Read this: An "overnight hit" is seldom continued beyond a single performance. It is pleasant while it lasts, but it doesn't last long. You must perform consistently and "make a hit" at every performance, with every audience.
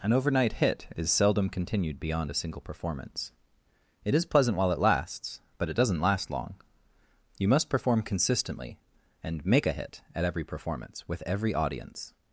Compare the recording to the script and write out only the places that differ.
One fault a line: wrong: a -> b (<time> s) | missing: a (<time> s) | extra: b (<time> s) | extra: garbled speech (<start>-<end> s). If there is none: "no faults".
no faults